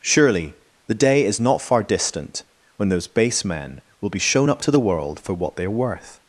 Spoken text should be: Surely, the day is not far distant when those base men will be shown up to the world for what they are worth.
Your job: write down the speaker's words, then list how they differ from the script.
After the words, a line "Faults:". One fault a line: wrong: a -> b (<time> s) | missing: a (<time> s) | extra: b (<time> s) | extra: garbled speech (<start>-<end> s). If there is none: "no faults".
Surely, the day is not far distant when those base men will be shown up to the world for what they are worth.
Faults:
no faults